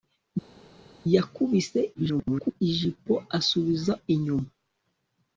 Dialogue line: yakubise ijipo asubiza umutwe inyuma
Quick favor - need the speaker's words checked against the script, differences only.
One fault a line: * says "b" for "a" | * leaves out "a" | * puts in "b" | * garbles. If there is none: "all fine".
* garbles
* leaves out "umutwe"